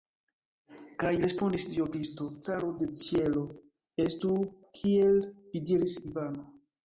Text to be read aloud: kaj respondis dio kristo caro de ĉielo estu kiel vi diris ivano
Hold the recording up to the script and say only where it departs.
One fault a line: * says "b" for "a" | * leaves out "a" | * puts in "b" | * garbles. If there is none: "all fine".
all fine